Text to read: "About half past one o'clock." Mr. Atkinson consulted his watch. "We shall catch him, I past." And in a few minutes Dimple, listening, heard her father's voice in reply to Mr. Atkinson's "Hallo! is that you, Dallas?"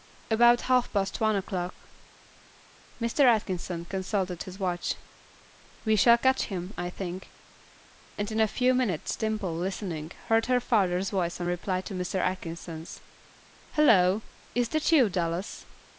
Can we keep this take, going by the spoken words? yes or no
no